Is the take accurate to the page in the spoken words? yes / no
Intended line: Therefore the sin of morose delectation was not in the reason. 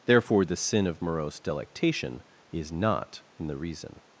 no